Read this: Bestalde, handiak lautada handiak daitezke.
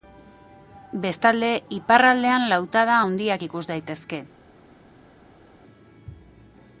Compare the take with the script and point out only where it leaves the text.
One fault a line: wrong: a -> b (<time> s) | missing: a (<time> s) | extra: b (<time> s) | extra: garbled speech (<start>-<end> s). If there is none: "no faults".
wrong: handiak -> iparraldean (1.7 s)
extra: ikus (3.4 s)